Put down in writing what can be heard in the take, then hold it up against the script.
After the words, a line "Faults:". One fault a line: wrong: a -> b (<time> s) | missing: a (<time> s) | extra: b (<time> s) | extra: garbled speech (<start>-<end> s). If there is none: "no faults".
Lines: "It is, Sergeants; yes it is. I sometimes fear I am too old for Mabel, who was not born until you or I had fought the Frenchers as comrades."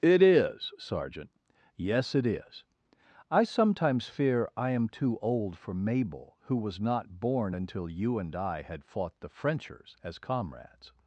"It is, Sergeant; yes it is. I sometimes fear I am too old for Mabel, who was not born until you and I had fought the Frenchers as comrades."
Faults:
wrong: Sergeants -> Sergeant (0.8 s)
wrong: or -> and (8.2 s)